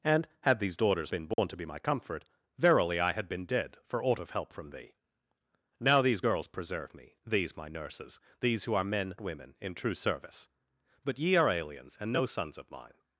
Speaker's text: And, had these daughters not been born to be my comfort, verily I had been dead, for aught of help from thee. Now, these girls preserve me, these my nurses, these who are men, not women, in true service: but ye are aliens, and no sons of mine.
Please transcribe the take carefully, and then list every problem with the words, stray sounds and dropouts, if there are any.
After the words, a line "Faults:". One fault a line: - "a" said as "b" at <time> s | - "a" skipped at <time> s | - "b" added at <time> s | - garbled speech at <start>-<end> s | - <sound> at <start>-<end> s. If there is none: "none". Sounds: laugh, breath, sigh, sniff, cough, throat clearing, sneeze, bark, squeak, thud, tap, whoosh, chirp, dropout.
And, had these daughters been born to be my comfort, verily I had been dead, for aught of help from thee. Now, these girls preserve me, these my nurses, these who are men, women, in true service: but ye are aliens, and no sons of mine.
Faults:
- "not" skipped at 1.1 s
- dropout at 1.3-1.4 s
- "not" skipped at 9.2 s